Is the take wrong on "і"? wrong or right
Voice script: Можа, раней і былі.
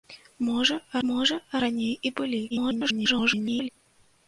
right